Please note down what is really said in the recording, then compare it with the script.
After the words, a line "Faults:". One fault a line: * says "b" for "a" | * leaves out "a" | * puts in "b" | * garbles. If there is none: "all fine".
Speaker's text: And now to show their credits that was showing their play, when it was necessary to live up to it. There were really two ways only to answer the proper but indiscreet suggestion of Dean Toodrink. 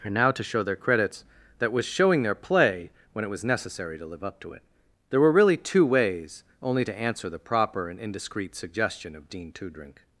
And now to show their credits that was showing their play, when it was necessary to live up to it. There were really two ways only to answer the proper and indiscreet suggestion of Dean Toodrink.
Faults:
* says "and" for "but"